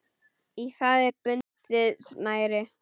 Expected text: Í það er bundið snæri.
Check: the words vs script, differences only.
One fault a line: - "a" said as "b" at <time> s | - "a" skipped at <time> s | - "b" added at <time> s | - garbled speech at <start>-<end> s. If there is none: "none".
none